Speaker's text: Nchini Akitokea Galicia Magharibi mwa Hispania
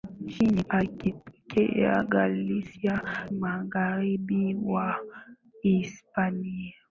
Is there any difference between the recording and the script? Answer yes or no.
no